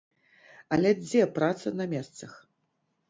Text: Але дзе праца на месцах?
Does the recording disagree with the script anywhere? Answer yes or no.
no